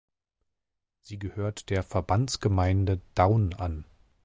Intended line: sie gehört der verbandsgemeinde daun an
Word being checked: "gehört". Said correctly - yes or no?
yes